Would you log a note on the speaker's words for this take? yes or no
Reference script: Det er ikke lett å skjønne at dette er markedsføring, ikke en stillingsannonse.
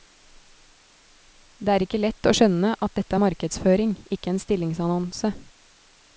no